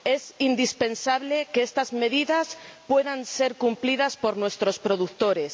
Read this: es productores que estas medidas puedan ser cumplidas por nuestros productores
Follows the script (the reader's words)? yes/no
no